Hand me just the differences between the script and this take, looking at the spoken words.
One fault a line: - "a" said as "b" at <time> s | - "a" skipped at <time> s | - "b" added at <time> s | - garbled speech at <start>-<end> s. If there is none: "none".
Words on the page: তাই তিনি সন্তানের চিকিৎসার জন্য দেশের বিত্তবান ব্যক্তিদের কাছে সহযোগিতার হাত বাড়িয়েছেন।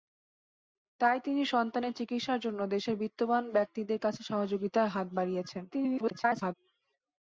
- garbled speech at 5.7-6.5 s